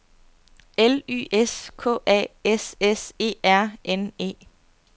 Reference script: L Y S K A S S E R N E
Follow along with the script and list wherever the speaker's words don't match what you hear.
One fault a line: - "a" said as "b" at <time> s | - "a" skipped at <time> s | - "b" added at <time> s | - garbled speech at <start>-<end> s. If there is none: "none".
none